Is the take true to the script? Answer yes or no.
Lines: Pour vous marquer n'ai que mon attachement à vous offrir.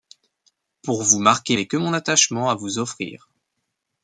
yes